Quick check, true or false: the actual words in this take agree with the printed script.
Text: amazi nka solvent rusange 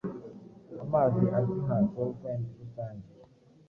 false